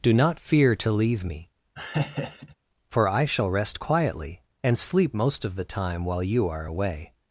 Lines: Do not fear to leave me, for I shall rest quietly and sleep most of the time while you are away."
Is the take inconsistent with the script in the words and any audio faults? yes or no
yes